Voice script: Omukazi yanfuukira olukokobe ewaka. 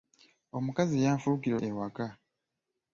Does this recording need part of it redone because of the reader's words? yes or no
yes